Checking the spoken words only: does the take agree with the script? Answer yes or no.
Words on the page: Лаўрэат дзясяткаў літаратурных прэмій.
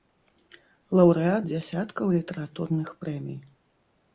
yes